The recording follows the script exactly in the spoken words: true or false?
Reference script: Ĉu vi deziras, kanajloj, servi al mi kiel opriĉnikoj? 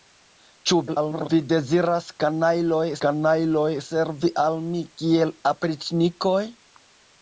false